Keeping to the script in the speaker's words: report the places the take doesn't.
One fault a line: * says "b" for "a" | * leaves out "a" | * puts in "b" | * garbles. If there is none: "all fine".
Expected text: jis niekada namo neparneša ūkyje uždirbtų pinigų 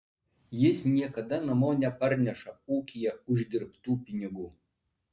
all fine